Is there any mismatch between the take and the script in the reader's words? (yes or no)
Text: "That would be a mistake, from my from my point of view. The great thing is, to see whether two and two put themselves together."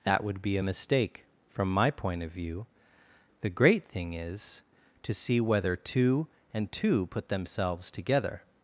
yes